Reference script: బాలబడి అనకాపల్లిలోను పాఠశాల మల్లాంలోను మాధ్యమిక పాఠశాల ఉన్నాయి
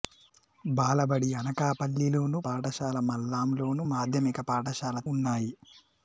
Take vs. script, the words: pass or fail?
pass